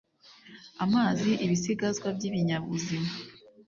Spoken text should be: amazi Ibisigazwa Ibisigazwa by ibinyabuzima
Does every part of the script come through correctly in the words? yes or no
no